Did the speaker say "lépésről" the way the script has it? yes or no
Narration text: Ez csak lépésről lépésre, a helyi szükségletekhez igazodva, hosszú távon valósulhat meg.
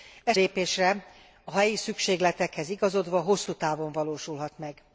no